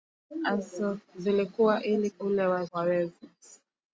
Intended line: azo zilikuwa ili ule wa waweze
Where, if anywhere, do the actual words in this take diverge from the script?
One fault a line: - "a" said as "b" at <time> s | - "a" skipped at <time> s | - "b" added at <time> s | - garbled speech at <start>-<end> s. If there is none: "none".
none